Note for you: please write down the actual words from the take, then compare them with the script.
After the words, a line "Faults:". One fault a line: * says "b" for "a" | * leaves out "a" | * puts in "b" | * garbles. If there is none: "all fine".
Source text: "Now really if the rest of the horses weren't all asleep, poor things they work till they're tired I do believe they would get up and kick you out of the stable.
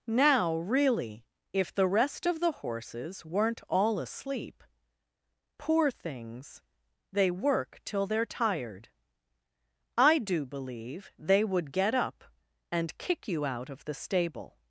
"Now really if the rest of the horses weren't all asleep, poor things they work till they're tired I do believe they would get up and kick you out of the stable.
Faults:
all fine